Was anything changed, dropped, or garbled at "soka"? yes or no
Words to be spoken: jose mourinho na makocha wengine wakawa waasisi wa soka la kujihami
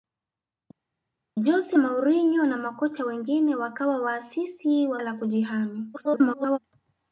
yes